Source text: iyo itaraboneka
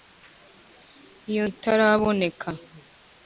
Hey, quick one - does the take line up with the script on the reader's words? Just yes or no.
yes